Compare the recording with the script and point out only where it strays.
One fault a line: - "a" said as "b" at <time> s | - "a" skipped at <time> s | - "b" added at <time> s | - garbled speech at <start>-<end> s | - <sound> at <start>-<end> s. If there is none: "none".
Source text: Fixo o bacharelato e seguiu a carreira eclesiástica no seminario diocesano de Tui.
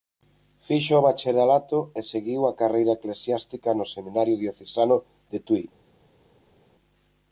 none